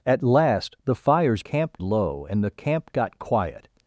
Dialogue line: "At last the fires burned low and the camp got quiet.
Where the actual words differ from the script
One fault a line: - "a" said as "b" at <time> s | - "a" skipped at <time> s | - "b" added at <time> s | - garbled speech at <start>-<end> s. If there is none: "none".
- "burned" said as "camp" at 1.4 s